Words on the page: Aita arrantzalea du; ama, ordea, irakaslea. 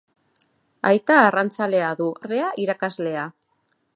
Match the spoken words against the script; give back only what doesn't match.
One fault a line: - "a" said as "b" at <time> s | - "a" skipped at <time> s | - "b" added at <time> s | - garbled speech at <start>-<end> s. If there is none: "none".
- "ama" skipped at 2.1 s